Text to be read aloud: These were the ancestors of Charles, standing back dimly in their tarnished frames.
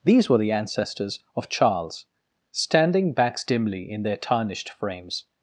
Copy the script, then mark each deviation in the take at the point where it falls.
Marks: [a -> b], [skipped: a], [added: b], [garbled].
These were the ancestors of Charles, standing [back -> backs] dimly in their tarnished frames.